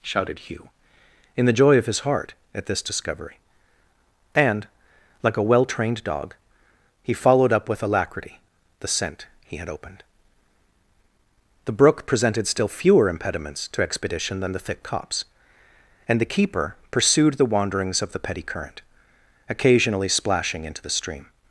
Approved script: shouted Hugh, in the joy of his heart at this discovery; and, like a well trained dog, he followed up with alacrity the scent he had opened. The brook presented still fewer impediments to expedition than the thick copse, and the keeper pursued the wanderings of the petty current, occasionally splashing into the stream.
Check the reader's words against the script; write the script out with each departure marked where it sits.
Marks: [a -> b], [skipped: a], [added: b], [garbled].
shouted Hugh, in the joy of his heart at this discovery; and, like a well trained dog, he followed up with alacrity the scent he had opened. The brook presented still fewer impediments to expedition than the thick copse, and the keeper pursued the wanderings of the petty current, occasionally splashing into the stream.